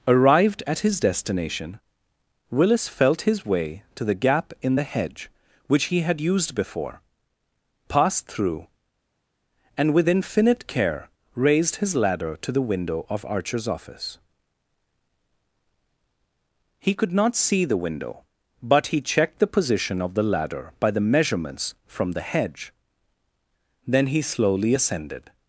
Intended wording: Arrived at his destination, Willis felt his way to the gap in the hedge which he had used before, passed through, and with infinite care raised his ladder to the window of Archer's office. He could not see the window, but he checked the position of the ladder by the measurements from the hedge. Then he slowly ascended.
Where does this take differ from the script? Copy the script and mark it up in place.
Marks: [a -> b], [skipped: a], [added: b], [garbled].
Arrived at his destination, Willis felt his way to the gap in the hedge which he had used before, passed through, and with infinite care raised his ladder to the window of Archer's office. He could not see the window, but he checked the position of the ladder by the measurements from the hedge. Then he slowly ascended.